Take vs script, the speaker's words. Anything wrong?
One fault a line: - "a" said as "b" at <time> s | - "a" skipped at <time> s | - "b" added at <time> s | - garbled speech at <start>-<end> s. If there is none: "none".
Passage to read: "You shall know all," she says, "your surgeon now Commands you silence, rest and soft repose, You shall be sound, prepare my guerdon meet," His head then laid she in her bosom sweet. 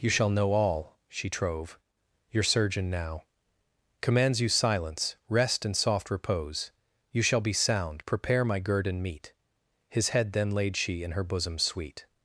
- "says" said as "trove" at 1.3 s